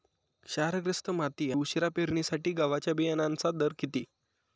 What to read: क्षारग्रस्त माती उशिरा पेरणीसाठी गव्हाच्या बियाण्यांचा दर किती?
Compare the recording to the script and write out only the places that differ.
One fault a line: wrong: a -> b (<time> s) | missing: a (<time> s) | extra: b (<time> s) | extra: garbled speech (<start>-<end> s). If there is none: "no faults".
no faults